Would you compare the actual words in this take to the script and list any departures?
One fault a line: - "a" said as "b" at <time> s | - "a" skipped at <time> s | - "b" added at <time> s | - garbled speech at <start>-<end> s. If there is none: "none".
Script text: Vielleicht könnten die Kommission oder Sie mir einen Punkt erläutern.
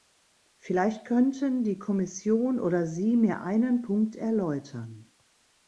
none